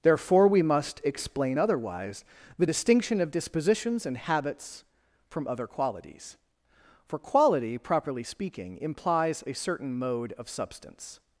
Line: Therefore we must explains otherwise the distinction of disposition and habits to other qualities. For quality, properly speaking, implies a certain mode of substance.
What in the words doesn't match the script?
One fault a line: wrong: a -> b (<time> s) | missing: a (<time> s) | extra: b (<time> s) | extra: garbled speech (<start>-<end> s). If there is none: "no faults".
wrong: explains -> explain (1.0 s)
wrong: disposition -> dispositions (3.3 s)
wrong: to -> from (5.3 s)